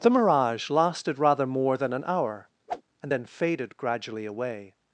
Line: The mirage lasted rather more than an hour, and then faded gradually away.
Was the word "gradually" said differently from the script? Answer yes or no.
no